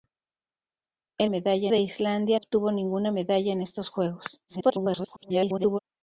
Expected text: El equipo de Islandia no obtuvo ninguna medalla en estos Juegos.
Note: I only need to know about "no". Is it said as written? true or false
false